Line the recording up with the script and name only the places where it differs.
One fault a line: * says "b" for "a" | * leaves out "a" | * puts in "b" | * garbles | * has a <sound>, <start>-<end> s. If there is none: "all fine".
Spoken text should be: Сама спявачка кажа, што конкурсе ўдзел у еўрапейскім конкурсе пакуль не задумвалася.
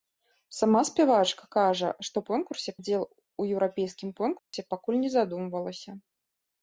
* has a dropout, 4.4-4.5 s